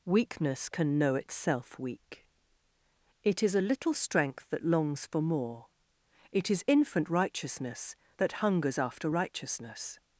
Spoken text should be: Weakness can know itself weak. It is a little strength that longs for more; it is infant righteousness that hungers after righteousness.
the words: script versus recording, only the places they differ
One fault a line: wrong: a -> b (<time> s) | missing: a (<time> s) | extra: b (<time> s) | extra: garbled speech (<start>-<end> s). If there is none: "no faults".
no faults